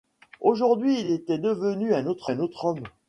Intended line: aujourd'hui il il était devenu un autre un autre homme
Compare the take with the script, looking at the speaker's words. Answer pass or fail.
pass